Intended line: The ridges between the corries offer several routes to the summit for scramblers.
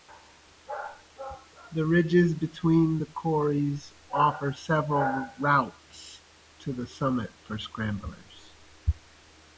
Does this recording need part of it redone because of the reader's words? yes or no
no